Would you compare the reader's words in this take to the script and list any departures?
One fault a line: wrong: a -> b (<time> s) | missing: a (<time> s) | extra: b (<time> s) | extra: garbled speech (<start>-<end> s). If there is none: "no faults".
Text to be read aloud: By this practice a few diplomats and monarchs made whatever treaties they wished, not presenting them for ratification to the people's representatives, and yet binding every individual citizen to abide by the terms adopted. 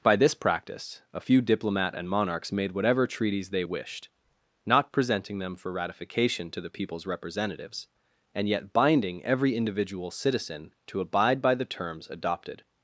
wrong: diplomats -> diplomat (1.4 s)